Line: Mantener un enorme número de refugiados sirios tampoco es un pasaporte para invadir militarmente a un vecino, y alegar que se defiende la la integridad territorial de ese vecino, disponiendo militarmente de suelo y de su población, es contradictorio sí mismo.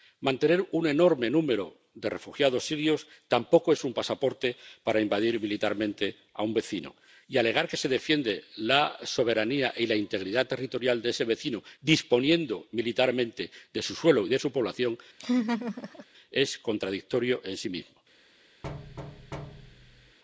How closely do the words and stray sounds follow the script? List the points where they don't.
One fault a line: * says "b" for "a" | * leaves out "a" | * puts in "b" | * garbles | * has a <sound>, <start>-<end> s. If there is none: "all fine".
* puts in "soberanía y"
* puts in "su"
* has a laugh, 15.2-16.1 s
* puts in "en"
* has a thud, 18.6-20.2 s